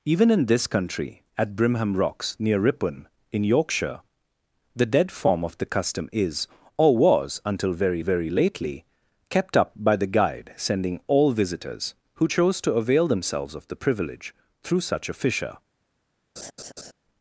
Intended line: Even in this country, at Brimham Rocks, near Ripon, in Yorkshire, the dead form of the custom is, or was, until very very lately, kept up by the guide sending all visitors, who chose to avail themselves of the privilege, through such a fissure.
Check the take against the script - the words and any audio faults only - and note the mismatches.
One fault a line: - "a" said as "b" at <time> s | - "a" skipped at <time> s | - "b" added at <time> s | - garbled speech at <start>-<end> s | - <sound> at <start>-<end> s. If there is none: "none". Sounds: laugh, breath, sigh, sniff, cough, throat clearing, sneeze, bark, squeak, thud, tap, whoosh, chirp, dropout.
- laugh at 16.4-16.9 s